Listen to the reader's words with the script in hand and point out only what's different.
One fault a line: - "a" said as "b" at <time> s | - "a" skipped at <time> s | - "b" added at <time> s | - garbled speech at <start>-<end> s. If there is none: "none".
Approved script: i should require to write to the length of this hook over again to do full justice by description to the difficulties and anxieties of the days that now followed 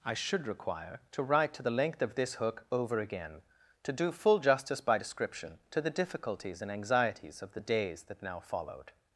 none